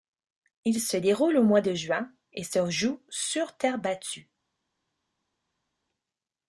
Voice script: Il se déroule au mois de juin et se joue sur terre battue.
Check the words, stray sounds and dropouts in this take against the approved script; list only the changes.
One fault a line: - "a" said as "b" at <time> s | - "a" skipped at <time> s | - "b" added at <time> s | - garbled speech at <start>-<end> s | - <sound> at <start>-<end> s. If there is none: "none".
none